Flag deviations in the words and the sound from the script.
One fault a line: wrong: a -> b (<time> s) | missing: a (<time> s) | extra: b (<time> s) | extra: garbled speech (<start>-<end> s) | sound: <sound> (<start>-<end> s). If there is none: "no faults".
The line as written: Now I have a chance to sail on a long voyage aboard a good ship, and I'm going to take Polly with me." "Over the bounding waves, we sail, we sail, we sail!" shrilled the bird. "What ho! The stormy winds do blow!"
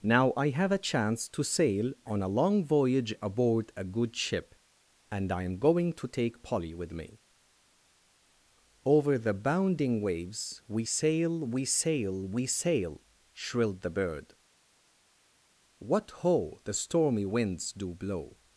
no faults